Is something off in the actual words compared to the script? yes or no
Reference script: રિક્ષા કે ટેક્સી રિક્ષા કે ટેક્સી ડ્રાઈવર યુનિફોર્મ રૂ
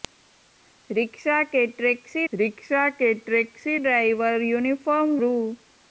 no